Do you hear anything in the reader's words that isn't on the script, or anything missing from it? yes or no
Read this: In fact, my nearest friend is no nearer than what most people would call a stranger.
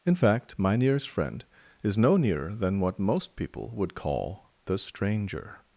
yes